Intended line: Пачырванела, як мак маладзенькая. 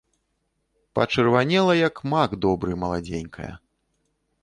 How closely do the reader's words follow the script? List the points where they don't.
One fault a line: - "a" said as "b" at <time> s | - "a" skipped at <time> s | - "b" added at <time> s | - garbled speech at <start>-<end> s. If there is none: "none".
- "добры" added at 2.5 s